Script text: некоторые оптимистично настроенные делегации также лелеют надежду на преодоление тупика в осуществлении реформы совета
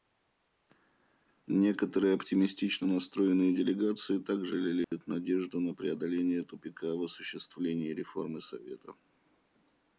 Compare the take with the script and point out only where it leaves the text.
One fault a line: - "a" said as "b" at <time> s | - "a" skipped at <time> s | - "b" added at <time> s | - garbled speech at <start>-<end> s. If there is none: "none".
none